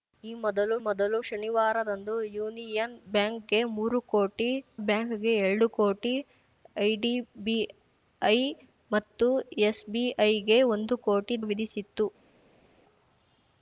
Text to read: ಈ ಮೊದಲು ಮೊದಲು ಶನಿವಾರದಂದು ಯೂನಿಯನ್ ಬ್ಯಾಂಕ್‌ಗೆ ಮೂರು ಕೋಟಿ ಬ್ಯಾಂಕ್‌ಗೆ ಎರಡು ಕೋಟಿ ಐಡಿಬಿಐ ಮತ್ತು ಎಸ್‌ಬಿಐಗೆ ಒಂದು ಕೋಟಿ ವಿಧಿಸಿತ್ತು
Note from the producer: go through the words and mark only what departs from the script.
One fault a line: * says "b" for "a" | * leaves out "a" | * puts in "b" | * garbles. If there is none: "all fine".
all fine